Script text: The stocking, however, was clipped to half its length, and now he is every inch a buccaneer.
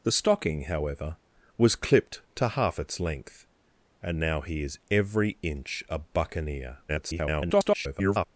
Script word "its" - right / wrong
right